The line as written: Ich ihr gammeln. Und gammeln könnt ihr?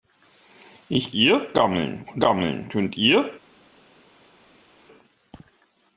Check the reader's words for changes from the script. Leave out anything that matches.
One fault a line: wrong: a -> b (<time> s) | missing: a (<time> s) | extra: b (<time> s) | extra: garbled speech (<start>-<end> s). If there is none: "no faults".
no faults